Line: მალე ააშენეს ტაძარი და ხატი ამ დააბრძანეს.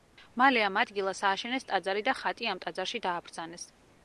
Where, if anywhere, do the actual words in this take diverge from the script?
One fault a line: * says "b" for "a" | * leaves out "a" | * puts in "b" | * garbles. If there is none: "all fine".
* puts in "ამ ადგილას"
* puts in "ტაძარში"